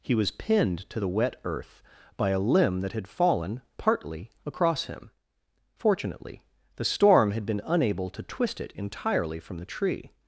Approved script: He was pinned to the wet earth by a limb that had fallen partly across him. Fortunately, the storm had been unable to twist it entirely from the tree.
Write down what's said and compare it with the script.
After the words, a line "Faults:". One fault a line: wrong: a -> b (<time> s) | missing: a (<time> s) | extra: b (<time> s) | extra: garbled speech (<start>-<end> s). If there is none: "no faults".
He was pinned to the wet earth by a limb that had fallen partly across him. Fortunately, the storm had been unable to twist it entirely from the tree.
Faults:
no faults